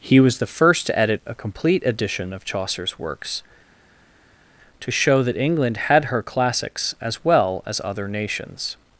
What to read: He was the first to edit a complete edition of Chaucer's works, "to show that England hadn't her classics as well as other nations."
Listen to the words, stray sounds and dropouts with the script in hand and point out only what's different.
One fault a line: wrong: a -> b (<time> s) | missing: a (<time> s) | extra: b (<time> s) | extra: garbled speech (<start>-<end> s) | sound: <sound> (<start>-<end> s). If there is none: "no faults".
wrong: hadn't -> had (5.8 s)